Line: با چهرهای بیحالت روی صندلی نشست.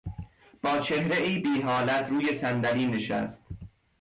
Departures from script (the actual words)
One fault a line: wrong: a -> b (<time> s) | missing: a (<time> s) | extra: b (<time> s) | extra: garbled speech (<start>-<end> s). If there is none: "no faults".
no faults